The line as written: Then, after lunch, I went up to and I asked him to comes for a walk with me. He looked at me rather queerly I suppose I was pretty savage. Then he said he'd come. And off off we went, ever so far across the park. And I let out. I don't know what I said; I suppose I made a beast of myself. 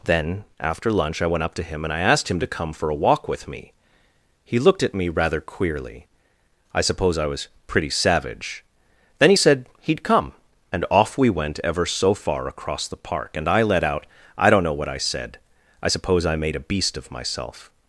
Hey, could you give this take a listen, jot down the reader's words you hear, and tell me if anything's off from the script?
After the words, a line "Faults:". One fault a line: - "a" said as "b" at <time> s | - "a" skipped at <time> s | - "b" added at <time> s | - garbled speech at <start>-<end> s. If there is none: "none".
Then, after lunch, I went up to him, and I asked him to come for a walk with me. He looked at me rather queerly I suppose I was pretty savage. Then he said he'd come. And off we went, ever so far across the park. And I let out. I don't know what I said; I suppose I made a beast of myself.
Faults:
- "him" added at 1.6 s
- "comes" said as "come" at 2.5 s
- "off" skipped at 11.2 s